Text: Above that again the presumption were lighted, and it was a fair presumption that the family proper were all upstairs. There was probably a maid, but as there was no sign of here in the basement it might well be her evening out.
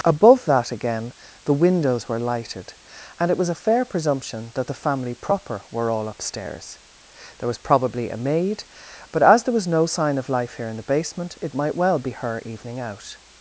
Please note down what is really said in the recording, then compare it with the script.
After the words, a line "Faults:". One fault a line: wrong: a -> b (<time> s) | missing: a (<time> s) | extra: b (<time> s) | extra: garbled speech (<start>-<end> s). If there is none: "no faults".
Above that again the windows were lighted, and it was a fair presumption that the family proper were all upstairs. There was probably a maid, but as there was no sign of life here in the basement it might well be her evening out.
Faults:
wrong: presumption -> windows (1.5 s)
extra: life (10.3 s)